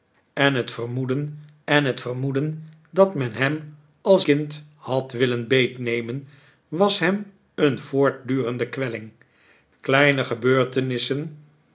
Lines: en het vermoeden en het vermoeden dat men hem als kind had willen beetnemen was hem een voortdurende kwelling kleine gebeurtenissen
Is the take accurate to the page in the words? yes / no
yes